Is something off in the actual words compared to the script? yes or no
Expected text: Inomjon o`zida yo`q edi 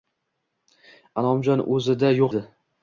no